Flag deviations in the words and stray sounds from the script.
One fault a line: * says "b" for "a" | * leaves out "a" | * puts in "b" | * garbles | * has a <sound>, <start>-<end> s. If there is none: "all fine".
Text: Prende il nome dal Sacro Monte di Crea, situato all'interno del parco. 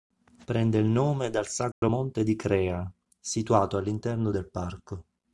* has a dropout, 1.7-1.8 s